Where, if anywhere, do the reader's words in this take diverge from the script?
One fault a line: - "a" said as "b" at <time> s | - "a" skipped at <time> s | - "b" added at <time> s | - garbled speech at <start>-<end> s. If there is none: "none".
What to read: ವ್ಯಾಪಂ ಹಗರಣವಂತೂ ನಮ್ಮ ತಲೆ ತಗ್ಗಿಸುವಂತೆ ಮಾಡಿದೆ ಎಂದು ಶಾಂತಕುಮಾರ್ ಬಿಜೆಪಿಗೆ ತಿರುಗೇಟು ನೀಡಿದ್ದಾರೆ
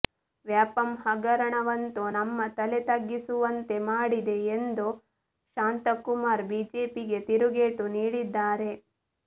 none